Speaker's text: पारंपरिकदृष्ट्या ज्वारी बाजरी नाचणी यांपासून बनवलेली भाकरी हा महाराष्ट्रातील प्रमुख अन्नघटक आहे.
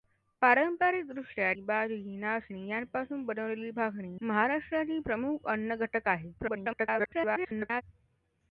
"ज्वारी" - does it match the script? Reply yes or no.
no